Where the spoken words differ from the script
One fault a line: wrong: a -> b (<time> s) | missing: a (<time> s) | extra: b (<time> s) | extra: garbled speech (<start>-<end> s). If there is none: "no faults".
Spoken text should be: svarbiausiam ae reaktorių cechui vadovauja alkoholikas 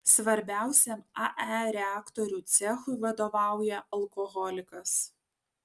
no faults